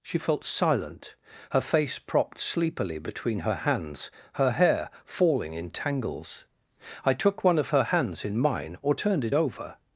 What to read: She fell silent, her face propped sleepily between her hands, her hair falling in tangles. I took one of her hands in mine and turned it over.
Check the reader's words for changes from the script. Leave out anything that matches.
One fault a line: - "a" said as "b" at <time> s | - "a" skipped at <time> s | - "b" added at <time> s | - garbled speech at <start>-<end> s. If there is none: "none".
- "fell" said as "felt" at 0.2 s
- "and" said as "or" at 8.8 s